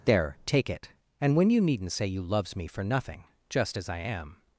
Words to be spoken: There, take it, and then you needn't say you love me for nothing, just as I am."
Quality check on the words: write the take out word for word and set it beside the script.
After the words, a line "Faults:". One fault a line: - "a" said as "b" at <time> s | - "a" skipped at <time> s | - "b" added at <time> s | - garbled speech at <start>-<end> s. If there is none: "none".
There, take it, and when you needn't say you loves me for nothing, just as I am."
Faults:
- "then" said as "when" at 1.4 s
- "love" said as "loves" at 2.2 s